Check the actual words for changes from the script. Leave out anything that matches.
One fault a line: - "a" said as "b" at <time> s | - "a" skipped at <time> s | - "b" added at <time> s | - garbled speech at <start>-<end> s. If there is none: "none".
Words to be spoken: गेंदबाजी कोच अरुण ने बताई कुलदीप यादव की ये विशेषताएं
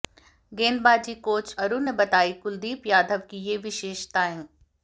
none